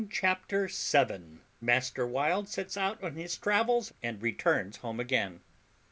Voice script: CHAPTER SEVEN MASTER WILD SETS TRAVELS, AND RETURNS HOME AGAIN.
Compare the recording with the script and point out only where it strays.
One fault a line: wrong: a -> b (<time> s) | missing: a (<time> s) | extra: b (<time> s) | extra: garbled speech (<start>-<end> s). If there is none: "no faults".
extra: OUT ON HIS (2.8 s)